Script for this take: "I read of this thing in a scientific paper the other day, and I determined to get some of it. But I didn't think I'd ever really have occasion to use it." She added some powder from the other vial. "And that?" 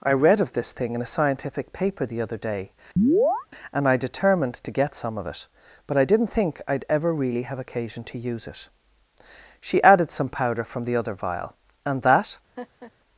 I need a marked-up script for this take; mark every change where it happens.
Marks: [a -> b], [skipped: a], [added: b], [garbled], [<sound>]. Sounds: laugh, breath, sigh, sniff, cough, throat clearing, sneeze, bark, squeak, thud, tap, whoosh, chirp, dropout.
"I read of this thing in a scientific paper the other day, [chirp] and I determined to get some of it. But I didn't think I'd ever really have occasion to use it." She added some powder from the other vial. "And that?" [laugh]